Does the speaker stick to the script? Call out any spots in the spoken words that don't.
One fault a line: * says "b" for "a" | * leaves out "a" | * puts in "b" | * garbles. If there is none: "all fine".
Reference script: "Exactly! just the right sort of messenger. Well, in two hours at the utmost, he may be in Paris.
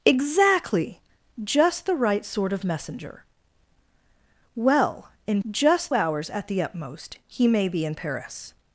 * says "just" for "two"